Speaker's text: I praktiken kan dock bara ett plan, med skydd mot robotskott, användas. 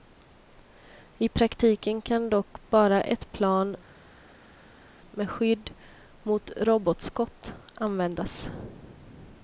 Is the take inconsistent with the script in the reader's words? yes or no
no